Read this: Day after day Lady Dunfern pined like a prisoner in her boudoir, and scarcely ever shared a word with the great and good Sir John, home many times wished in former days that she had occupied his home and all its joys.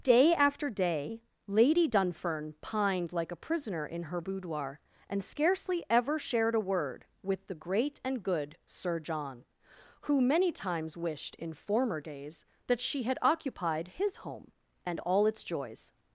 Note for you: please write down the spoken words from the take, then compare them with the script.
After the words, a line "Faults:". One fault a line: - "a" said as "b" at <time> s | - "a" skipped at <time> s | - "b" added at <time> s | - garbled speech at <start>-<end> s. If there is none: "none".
Day after day Lady Dunfern pined like a prisoner in her boudoir, and scarcely ever shared a word with the great and good Sir John, who many times wished in former days that she had occupied his home and all its joys.
Faults:
- "home" said as "who" at 10.0 s